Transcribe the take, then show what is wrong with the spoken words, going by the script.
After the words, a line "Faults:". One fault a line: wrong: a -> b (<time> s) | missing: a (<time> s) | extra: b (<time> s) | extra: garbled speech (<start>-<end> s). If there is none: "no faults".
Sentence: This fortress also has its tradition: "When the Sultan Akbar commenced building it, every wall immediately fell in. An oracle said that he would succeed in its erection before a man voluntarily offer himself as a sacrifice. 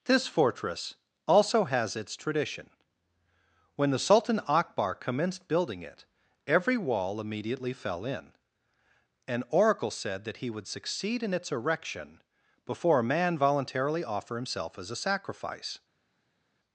This fortress also has its tradition: "When the Sultan Akbar commenced building it, every wall immediately fell in. An oracle said that he would succeed in its erection before a man voluntarily offer himself as a sacrifice.
Faults:
no faults